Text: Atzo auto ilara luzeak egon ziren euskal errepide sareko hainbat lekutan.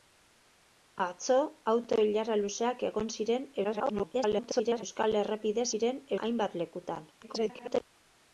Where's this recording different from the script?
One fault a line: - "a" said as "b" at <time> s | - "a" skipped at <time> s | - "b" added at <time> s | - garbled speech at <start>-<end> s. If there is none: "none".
- garbled speech at 3.6-4.8 s
- "sareko" said as "ziren" at 5.7 s
- garbled speech at 7.2-7.8 s